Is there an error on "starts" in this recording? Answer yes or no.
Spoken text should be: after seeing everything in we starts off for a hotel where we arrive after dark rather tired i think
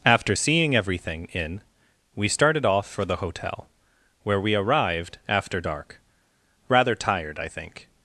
yes